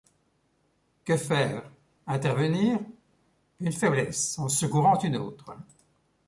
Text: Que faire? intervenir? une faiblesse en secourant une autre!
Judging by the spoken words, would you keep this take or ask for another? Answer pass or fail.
pass